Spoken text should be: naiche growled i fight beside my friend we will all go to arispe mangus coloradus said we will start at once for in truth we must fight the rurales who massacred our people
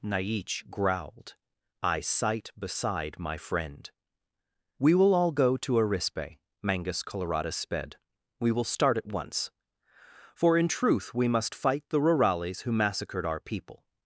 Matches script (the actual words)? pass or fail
fail